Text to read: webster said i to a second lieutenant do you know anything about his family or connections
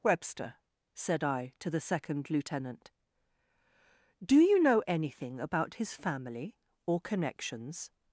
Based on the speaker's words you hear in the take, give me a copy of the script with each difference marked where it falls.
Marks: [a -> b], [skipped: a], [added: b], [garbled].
webster said i to [a -> the] second lieutenant do you know anything about his family or connections